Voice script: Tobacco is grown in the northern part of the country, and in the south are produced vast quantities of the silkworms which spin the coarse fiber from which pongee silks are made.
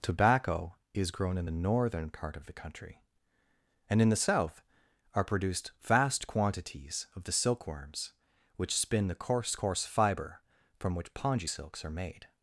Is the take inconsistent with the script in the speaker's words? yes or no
yes